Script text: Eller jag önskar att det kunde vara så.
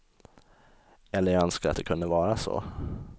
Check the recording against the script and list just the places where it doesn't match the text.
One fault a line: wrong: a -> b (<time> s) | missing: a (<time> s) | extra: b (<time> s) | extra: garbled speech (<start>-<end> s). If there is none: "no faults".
no faults